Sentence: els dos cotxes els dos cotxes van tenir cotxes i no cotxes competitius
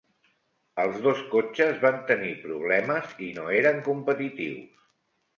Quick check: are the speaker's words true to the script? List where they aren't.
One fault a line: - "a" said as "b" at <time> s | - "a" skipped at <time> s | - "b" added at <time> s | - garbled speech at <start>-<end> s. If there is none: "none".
- "els dos cotxes" skipped at 1.8 s
- "cotxes" said as "problemes" at 2.5 s
- "cotxes" said as "eren" at 3.6 s